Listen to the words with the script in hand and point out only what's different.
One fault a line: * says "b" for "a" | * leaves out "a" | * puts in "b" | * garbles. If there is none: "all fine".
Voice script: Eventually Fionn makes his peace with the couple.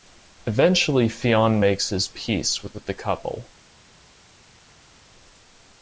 * puts in "with"